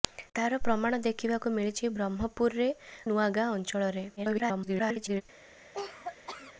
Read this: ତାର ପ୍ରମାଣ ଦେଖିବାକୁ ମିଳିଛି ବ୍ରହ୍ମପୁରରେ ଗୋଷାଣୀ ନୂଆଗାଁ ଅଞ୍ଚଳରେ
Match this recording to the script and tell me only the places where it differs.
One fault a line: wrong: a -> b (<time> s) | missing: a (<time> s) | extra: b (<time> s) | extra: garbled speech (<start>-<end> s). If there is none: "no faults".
missing: ଗୋଷାଣୀ (2.7 s)
extra: garbled speech (4.2-5.2 s)